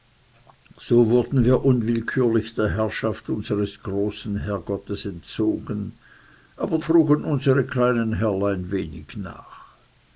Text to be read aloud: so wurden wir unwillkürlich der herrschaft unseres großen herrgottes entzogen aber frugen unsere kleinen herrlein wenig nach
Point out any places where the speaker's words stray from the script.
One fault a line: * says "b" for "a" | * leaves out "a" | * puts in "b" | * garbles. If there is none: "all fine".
all fine